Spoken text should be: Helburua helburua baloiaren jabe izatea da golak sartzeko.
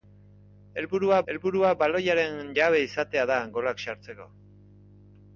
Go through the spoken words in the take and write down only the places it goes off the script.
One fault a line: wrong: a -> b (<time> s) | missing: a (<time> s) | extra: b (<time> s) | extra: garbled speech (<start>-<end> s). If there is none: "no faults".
no faults